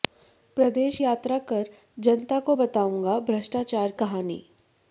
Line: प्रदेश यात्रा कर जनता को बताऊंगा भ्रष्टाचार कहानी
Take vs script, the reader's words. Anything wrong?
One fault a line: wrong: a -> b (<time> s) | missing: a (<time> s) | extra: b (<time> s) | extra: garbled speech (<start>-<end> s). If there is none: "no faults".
no faults